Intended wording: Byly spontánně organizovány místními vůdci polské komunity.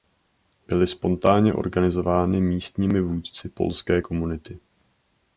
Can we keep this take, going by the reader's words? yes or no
yes